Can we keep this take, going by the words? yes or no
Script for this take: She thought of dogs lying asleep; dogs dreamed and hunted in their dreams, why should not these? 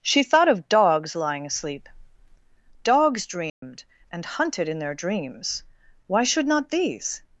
yes